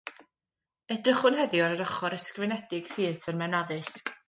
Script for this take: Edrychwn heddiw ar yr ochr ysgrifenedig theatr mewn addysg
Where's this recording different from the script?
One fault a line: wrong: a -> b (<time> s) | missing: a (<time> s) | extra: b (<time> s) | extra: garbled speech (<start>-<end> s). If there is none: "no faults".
no faults